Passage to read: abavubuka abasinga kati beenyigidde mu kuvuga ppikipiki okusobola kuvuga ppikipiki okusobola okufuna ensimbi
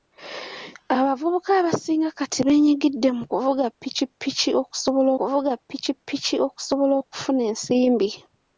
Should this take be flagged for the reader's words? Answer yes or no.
no